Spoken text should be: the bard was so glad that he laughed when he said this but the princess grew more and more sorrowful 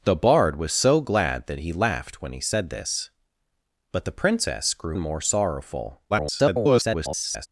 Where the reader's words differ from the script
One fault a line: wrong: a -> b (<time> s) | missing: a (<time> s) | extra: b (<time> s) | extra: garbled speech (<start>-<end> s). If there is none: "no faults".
missing: more (5.0 s)
extra: garbled speech (6.1-7.5 s)